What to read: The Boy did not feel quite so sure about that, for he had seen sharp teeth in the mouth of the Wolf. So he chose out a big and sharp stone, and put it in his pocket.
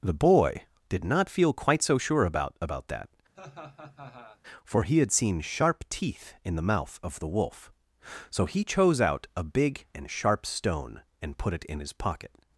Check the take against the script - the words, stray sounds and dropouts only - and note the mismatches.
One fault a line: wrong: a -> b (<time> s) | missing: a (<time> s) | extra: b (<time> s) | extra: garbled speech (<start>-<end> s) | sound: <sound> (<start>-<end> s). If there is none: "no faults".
extra: about (2.6 s)
sound: laugh (3.3-4.4 s)